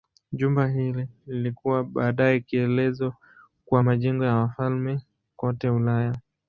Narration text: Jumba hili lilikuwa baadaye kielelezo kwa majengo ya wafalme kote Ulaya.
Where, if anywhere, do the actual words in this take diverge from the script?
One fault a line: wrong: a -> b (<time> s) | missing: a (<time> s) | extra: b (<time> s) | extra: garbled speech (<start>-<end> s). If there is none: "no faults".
no faults